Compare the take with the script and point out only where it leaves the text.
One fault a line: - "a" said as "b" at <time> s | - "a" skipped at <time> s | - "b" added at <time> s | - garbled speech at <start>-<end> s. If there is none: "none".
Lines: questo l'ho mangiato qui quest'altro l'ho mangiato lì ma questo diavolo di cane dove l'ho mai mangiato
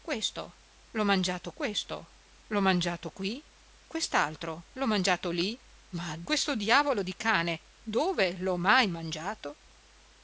- "questo l'ho mangiato" added at 1.5 s